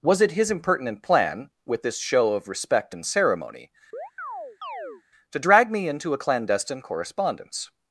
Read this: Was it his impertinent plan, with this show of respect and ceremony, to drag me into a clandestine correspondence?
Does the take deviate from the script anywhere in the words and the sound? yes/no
yes